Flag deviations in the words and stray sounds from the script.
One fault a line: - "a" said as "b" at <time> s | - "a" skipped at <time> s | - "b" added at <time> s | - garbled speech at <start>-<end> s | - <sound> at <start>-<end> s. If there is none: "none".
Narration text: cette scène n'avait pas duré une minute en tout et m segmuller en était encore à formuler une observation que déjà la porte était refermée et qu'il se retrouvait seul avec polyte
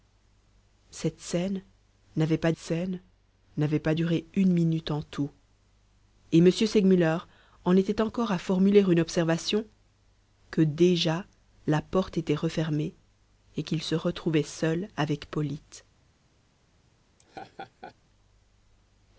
- "scène n'avait pas" added at 2.6 s
- laugh at 17.2-17.9 s